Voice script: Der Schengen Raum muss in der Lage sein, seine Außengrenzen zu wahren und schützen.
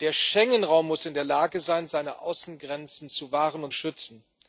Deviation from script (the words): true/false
false